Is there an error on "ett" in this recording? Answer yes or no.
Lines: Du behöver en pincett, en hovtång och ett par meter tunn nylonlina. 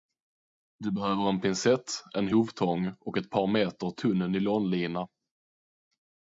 no